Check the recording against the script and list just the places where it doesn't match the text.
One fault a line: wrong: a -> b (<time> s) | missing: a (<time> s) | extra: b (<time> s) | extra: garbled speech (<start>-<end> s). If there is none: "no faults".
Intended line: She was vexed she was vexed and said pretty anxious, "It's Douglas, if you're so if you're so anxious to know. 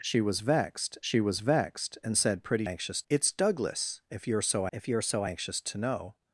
no faults